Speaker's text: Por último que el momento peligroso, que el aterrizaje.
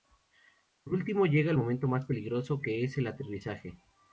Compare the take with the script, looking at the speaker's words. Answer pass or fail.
fail